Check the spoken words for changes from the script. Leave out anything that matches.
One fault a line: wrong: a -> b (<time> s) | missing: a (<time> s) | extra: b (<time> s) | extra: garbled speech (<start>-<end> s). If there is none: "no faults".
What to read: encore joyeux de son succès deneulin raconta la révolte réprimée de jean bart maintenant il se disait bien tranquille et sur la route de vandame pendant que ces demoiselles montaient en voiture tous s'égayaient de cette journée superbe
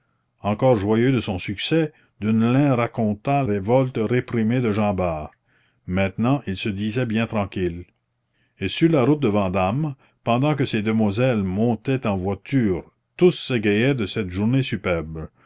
missing: la (3.4 s)